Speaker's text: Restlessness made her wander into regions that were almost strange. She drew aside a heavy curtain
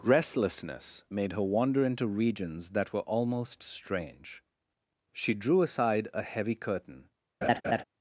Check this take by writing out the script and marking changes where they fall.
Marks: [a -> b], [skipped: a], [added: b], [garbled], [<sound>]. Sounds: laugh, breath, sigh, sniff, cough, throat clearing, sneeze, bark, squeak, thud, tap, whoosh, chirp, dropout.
Restlessness made her wander into regions that were almost strange. She drew aside a heavy curtain [laugh]